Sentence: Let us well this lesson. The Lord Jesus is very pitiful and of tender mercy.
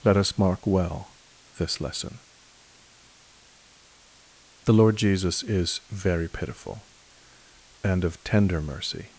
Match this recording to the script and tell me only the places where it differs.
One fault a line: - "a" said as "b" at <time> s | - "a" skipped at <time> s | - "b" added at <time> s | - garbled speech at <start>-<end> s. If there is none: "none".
- "mark" added at 0.3 s